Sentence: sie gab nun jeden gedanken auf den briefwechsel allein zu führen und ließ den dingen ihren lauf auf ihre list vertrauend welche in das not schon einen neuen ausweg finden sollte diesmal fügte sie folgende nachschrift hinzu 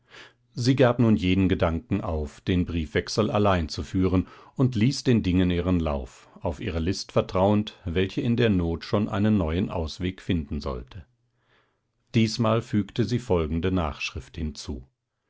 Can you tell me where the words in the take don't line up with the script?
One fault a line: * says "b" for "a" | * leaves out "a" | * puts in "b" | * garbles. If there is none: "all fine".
* says "der" for "das"